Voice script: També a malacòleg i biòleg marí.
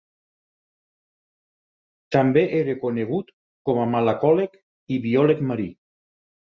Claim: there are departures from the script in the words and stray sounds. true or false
true